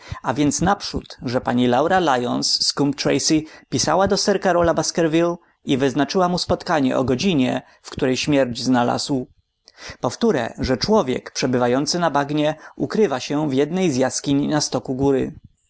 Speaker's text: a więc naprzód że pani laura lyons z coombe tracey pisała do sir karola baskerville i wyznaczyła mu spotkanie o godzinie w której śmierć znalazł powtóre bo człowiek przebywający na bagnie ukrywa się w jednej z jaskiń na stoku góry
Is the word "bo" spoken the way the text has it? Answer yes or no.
no